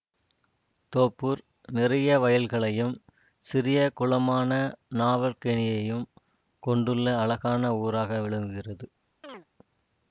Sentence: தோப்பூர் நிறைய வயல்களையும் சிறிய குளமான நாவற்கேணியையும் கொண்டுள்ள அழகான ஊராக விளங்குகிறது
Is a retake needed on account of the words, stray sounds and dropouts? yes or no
yes